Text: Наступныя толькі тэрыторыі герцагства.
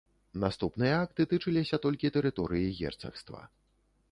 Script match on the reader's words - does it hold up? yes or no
no